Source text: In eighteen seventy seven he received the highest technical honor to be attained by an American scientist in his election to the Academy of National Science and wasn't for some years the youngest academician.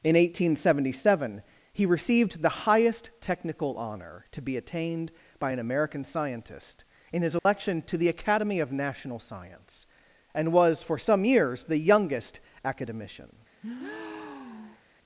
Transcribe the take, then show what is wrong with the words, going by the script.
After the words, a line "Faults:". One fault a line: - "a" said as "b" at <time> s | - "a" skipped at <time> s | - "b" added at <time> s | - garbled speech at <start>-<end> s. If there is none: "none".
In eighteen seventy seven he received the highest technical honor to be attained by an American scientist in his election to the Academy of National Science and was for some years the youngest academician.
Faults:
- "wasn't" said as "was" at 10.5 s